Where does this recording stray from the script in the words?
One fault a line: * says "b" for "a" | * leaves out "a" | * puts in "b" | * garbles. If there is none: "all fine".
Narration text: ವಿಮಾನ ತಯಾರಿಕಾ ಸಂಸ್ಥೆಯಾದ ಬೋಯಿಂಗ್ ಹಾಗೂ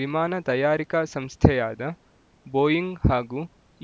all fine